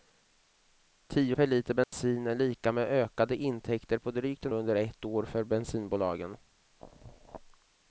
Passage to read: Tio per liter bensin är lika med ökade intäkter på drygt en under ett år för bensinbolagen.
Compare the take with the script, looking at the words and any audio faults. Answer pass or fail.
fail